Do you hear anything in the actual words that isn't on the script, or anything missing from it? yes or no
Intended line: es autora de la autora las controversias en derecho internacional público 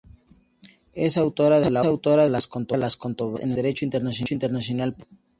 no